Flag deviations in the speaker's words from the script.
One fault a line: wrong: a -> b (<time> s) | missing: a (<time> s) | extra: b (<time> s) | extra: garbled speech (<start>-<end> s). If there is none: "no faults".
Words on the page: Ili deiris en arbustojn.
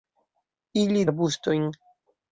missing: deiris en (1.0 s)